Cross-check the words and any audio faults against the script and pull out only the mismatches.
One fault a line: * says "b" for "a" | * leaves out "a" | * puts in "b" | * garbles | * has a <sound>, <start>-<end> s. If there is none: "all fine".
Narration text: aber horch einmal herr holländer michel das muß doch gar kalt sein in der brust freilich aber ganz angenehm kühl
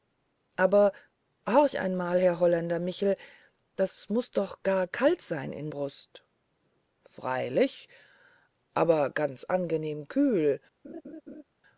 * leaves out "der"
* has a laugh, 10.8-11.4 s